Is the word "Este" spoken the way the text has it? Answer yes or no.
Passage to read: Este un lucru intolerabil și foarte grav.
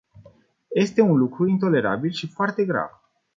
yes